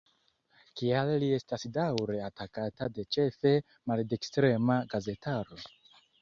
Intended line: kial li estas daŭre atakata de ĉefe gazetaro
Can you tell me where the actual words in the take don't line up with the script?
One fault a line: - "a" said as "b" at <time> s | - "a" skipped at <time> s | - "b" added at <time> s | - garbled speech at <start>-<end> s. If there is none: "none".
- "maldekstrema" added at 3.9 s